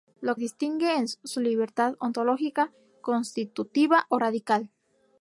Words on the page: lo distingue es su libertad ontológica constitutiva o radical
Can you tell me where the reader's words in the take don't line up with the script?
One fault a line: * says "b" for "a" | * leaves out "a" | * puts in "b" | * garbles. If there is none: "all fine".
all fine